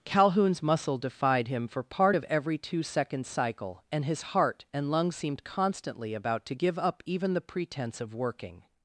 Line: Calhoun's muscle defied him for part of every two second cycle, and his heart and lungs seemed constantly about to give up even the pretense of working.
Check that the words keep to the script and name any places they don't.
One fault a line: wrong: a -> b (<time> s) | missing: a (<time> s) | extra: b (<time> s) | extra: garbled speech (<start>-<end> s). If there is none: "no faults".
no faults